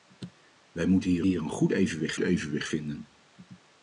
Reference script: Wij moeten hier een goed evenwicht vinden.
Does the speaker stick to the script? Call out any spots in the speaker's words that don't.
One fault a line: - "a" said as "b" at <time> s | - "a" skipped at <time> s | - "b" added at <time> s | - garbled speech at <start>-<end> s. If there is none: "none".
- "hier" added at 1.3 s
- "evenwicht" added at 2.2 s